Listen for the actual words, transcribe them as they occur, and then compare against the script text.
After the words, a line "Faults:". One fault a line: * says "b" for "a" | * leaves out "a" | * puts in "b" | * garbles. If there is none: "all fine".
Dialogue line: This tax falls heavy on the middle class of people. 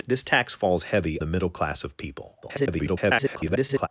This tax falls heavy the middle class of people. [garbled]
Faults:
* leaves out "on"
* garbles